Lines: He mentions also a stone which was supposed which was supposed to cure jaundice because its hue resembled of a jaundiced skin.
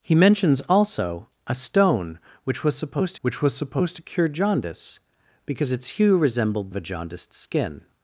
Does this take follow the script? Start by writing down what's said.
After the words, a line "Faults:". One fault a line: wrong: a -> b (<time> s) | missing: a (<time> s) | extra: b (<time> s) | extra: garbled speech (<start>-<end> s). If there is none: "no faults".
He mentions also a stone which was supposed which was supposed to cure jaundice because its hue resembled of a jaundiced skin.
Faults:
no faults